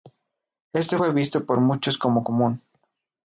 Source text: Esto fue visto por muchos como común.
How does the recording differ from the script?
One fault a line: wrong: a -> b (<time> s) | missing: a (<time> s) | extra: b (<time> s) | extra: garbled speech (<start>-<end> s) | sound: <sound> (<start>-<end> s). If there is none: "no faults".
no faults